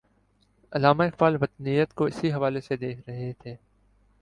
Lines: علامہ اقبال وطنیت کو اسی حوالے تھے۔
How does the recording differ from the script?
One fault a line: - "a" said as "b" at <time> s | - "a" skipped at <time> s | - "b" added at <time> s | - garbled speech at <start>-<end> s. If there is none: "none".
- "سے دیکھ رہے" added at 2.6 s